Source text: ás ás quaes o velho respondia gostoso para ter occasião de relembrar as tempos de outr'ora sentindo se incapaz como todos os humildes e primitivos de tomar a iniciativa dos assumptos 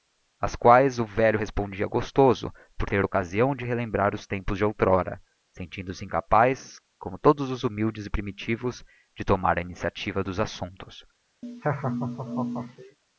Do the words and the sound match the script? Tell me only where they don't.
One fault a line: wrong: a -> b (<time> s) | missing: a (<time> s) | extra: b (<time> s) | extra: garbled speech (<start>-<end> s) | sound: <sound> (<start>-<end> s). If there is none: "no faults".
missing: ás (0.6 s)
wrong: para -> por (2.8 s)
wrong: as -> os (4.1 s)
sound: laugh (11.4-13.0 s)